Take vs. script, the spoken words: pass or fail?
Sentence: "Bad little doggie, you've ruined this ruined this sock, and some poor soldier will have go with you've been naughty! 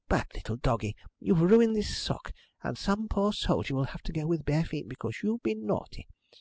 fail